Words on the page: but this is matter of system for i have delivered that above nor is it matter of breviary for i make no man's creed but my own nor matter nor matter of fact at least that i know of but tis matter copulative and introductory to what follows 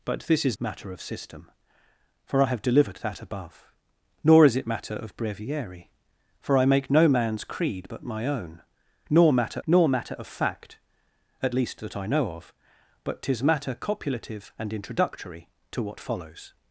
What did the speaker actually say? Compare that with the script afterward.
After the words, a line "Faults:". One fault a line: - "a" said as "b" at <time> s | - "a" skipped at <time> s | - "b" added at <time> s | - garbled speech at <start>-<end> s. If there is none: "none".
but this is matter of system for i have delivered that above nor is it matter of breviary for i make no man's creed but my own nor matter nor matter of fact at least that i know of but tis matter copulative and introductory to what follows
Faults:
none